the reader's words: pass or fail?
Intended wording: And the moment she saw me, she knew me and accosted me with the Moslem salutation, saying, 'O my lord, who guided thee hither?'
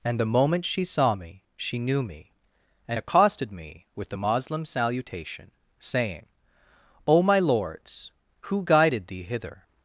fail